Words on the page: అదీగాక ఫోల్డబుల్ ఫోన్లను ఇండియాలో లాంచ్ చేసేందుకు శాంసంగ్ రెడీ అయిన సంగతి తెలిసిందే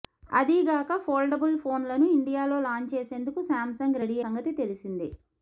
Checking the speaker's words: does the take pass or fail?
fail